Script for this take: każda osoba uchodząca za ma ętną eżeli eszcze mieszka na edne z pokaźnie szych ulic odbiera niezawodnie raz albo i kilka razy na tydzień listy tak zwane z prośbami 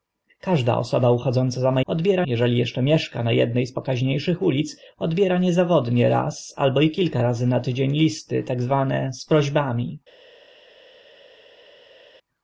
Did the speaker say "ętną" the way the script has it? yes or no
no